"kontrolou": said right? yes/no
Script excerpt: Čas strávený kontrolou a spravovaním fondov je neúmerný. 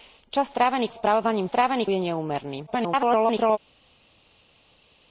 no